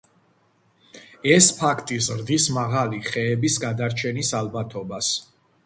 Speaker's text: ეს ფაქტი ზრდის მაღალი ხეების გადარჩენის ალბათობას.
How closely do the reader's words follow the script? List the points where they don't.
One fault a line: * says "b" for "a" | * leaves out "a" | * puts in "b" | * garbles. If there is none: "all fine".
all fine